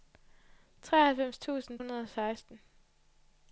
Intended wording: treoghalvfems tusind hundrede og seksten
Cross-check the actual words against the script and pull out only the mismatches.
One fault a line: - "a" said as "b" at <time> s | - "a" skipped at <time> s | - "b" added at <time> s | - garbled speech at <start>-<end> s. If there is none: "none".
none